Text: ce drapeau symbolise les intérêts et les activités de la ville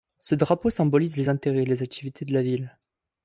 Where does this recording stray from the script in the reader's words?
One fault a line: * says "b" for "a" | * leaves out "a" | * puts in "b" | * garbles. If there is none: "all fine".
all fine